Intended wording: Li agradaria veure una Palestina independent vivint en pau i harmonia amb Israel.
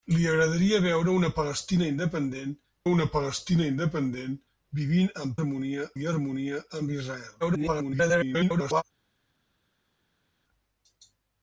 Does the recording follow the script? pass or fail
fail